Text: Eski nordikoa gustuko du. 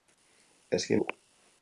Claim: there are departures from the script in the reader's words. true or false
true